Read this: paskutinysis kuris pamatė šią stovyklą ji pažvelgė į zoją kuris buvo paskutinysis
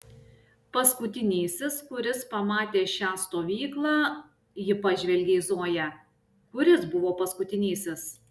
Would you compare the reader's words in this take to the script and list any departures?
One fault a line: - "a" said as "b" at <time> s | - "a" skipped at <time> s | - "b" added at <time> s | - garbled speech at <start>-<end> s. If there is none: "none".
none